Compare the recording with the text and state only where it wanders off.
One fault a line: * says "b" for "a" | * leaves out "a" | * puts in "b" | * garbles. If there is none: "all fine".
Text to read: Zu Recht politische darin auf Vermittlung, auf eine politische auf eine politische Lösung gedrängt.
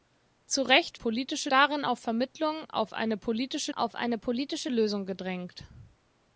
all fine